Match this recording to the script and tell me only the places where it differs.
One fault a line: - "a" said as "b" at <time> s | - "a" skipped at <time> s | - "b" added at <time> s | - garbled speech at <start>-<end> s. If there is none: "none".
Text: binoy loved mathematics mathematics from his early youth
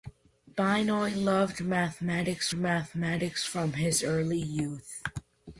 none